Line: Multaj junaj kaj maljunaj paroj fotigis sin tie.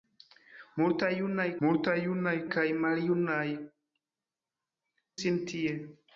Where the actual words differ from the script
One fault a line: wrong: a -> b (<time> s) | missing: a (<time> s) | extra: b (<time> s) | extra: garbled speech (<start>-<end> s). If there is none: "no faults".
extra: multaj junaj (1.6 s)
missing: paroj fotigis (3.4 s)